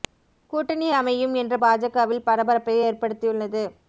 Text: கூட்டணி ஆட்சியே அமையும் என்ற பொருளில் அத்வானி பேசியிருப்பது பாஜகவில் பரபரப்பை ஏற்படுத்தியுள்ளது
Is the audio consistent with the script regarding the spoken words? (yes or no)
no